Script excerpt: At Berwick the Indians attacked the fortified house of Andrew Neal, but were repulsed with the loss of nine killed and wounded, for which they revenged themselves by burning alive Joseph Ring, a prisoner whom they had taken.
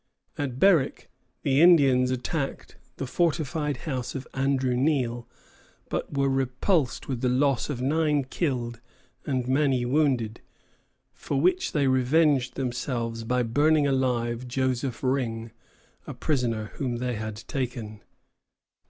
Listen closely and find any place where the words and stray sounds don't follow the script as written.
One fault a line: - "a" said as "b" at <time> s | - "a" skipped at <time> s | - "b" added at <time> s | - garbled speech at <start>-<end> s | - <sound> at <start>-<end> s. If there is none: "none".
- "many" added at 9.5 s